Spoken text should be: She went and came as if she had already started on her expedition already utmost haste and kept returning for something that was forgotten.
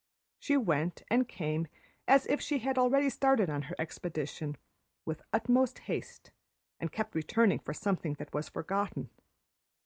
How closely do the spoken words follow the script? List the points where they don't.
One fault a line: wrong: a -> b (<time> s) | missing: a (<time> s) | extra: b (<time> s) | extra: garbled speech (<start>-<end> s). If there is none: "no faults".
wrong: already -> with (5.1 s)